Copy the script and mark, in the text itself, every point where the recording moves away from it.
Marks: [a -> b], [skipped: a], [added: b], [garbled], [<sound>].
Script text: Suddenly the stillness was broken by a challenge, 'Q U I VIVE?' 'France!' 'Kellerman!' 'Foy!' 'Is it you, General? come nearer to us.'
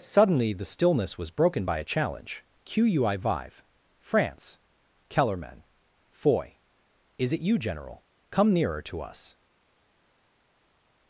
Suddenly the stillness was broken by a challenge, 'Q U I VIVE?' 'France!' 'Kellerman!' 'Foy!' 'Is it you, General? come nearer to us.'